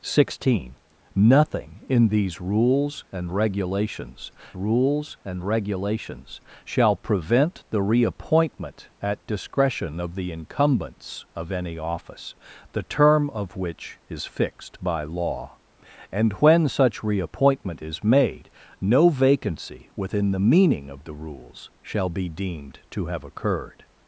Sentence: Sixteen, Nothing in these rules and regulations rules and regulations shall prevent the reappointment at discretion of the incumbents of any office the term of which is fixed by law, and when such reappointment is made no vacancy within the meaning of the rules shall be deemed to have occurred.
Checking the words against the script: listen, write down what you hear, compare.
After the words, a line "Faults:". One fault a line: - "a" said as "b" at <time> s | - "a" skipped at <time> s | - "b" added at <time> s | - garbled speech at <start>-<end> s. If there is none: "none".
Sixteen, Nothing in these rules and regulations rules and regulations shall prevent the reappointment at discretion of the incumbents of any office the term of which is fixed by law, and when such reappointment is made no vacancy within the meaning of the rules shall be deemed to have occurred.
Faults:
none